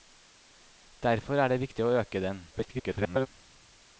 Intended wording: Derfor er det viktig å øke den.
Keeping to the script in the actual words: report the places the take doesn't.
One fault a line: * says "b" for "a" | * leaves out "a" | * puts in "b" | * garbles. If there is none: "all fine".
* garbles